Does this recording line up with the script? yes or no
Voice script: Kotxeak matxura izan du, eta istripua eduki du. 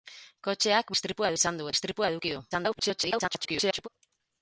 no